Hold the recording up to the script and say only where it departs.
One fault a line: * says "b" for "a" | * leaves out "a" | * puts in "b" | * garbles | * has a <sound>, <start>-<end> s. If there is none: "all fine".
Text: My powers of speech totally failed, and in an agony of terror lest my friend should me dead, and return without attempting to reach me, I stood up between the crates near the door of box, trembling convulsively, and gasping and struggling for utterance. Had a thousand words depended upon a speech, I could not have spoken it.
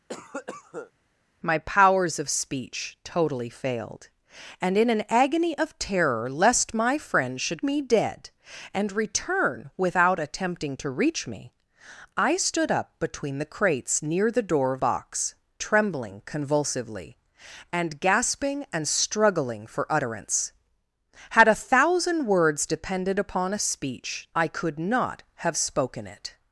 * has a cough, 0.1-0.9 s